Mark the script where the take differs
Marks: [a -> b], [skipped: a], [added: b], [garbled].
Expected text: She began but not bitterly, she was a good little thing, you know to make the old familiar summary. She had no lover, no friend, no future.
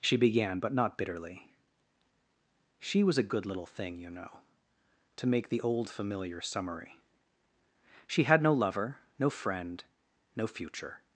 She began but not bitterly, she was a good little thing, you know to make the old familiar summary. She had no lover, no friend, no future.